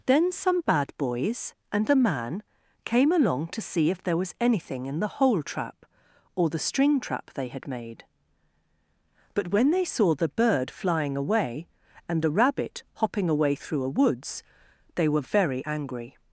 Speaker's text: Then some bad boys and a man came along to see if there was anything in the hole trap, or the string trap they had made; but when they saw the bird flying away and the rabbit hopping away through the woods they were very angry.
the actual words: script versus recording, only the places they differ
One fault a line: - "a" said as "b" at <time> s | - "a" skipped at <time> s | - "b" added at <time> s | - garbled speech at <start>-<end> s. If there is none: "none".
- "the" said as "a" at 13.8 s